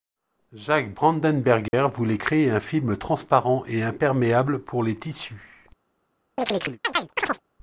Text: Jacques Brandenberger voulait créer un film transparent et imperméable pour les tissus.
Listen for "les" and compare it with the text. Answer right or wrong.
right